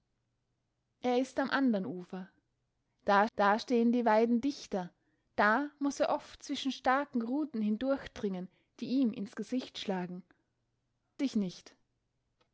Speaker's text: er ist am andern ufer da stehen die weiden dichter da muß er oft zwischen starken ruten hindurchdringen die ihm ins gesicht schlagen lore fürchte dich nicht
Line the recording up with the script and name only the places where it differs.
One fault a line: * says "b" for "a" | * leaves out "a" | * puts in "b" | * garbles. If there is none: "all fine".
* puts in "da"
* leaves out "lore fürchte"